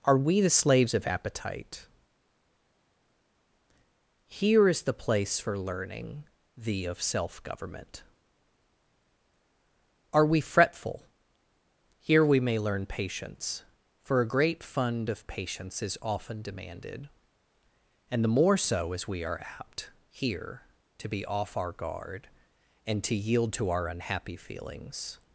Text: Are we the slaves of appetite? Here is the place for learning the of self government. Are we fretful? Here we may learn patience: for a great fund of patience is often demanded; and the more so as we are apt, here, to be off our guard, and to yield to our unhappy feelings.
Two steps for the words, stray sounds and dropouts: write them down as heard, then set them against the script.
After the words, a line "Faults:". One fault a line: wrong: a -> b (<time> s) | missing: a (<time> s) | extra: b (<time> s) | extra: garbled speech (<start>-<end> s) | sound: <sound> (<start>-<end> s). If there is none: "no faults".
Are we the slaves of appetite? Here is the place for learning the of self government. Are we fretful? Here we may learn patience: for a great fund of patience is often demanded; and the more so as we are apt, here, to be off our guard, and to yield to our unhappy feelings.
Faults:
no faults